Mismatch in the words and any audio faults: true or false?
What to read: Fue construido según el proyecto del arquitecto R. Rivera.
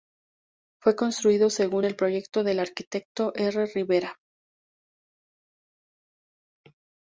false